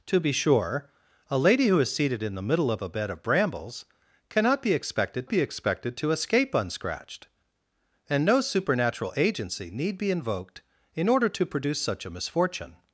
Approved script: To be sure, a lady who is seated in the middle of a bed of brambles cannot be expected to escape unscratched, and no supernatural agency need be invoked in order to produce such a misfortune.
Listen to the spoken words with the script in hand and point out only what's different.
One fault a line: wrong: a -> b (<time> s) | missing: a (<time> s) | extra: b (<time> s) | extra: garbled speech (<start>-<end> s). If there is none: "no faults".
extra: be expected (5.3 s)